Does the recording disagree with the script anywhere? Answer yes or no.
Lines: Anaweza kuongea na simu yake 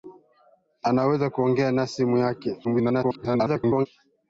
yes